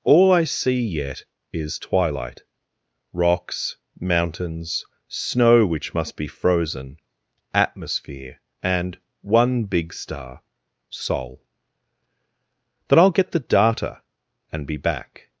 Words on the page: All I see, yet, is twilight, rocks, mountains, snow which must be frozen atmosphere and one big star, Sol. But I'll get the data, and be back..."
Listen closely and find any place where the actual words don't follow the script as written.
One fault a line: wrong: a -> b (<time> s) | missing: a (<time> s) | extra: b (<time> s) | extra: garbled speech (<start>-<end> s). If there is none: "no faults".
wrong: But -> Then (12.9 s)